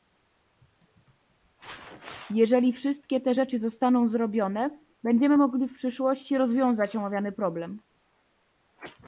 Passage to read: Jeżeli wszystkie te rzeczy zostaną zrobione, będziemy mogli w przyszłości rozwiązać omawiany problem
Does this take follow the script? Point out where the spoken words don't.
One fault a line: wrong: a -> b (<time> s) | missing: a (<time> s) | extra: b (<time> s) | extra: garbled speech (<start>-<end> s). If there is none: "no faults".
no faults